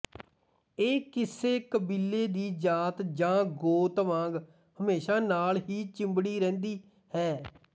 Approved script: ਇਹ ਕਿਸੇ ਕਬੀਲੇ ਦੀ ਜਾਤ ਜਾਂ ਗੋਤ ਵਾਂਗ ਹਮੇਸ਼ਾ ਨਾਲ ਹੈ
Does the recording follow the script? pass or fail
fail